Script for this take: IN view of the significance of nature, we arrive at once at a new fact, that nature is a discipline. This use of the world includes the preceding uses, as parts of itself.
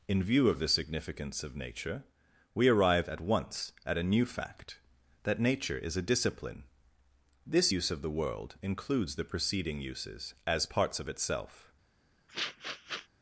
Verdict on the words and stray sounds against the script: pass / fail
fail